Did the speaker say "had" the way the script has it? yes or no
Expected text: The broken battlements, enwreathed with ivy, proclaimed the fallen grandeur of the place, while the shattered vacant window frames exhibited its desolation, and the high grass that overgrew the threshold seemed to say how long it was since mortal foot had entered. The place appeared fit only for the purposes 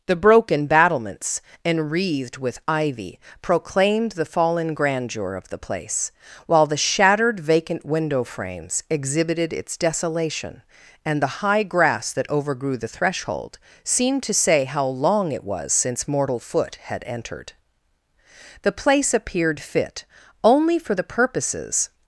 yes